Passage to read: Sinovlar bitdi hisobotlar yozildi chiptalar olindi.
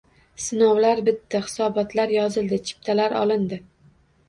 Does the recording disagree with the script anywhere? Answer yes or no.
no